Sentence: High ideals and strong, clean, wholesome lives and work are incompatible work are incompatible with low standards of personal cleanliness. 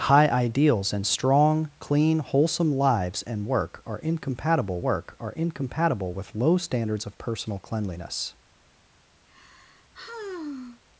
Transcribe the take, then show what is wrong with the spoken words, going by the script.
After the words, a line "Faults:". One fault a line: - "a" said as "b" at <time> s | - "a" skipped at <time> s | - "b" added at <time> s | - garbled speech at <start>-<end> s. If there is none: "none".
High ideals and strong, clean, wholesome lives and work are incompatible work are incompatible with low standards of personal cleanliness.
Faults:
none